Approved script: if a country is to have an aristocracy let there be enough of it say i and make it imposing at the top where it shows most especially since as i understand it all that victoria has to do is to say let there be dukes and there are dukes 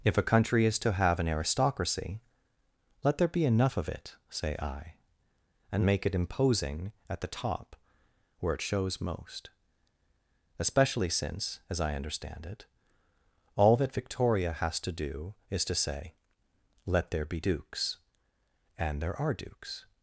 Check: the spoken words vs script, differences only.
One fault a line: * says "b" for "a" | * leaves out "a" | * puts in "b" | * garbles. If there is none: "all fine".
all fine